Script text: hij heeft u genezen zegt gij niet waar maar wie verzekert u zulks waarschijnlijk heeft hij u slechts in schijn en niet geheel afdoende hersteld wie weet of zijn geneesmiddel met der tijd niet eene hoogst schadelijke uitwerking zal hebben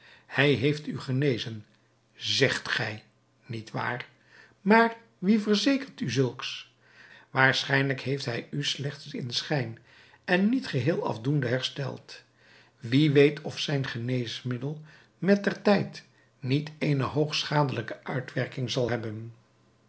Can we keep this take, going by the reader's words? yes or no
yes